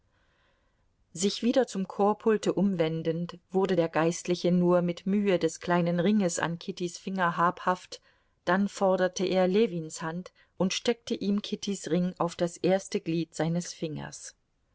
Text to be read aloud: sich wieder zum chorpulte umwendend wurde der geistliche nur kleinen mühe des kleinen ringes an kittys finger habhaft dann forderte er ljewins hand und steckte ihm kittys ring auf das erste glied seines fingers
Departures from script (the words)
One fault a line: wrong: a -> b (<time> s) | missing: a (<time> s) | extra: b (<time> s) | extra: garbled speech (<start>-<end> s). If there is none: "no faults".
wrong: kleinen -> mit (4.8 s)